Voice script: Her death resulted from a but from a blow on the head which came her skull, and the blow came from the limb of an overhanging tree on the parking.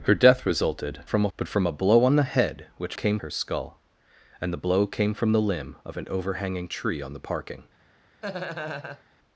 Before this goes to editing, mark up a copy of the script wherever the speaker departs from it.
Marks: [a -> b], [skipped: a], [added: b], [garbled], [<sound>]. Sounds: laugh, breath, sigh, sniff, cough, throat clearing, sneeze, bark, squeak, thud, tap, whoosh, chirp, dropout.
Her death resulted from a but from a blow on the head which came her skull, and the blow came from the limb of an overhanging tree on the parking. [laugh]